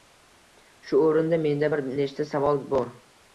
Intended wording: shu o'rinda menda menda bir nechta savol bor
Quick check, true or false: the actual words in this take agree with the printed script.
false